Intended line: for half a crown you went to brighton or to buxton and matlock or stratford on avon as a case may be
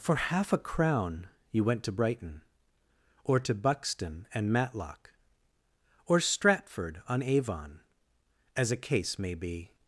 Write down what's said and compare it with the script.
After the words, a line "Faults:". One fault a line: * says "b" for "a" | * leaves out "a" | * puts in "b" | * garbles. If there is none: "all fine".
for half a crown you went to brighton or to buxton and matlock or stratford on avon as a case may be
Faults:
all fine